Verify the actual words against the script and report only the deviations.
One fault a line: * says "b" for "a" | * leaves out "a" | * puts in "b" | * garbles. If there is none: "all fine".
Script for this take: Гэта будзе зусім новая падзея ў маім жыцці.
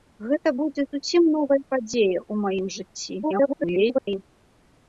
* garbles